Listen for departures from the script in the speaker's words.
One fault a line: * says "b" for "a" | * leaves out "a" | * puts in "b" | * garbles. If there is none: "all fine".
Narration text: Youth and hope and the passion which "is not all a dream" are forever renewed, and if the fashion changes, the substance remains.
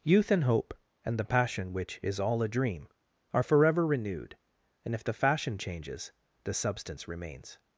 * leaves out "not"